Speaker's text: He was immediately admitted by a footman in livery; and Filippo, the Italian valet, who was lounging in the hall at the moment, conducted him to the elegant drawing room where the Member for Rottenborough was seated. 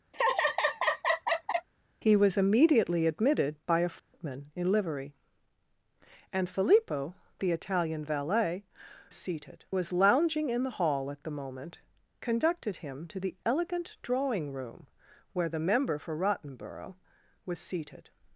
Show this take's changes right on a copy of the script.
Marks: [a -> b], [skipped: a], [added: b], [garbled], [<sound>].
[laugh] He was immediately admitted by a footman [dropout] in livery; and Filippo, the Italian valet, [who -> seated] was lounging in the hall at the moment, conducted him to the elegant drawing room where the Member for Rottenborough was seated.